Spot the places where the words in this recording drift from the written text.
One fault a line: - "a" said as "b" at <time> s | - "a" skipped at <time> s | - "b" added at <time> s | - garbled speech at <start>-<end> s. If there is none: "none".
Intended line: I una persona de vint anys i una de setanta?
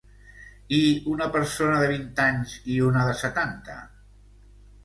none